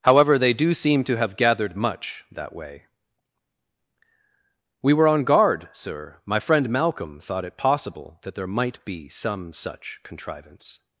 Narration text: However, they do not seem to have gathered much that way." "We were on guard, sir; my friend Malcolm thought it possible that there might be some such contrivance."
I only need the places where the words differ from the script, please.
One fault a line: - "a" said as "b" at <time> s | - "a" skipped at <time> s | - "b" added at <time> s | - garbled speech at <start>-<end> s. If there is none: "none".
- "not" skipped at 0.7 s